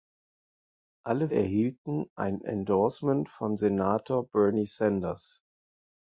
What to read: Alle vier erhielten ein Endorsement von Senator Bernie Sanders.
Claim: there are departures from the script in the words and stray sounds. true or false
true